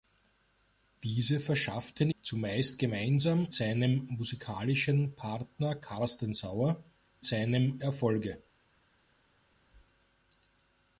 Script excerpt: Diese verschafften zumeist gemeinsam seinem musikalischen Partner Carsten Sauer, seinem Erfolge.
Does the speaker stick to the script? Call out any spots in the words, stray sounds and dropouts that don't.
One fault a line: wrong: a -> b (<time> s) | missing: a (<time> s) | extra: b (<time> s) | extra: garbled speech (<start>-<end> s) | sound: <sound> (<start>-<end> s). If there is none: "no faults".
no faults